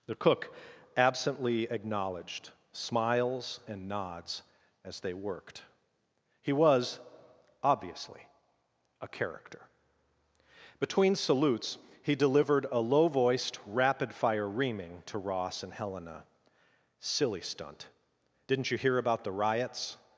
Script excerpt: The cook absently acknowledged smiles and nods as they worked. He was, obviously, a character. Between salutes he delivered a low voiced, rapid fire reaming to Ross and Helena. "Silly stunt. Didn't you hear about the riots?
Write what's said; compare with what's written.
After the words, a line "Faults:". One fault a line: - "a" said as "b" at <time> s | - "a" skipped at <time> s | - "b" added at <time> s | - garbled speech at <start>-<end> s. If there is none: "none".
The cook absently acknowledged smiles and nods as they worked. He was, obviously, a character. Between salutes he delivered a low voiced, rapid fire reaming to Ross and Helena. "Silly stunt. Didn't you hear about the riots?
Faults:
none